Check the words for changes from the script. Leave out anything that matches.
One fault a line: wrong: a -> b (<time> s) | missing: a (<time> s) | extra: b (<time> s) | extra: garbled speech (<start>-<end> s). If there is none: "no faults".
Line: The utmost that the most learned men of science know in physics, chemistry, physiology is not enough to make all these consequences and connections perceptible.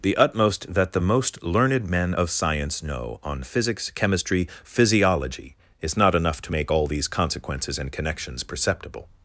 wrong: in -> on (3.2 s)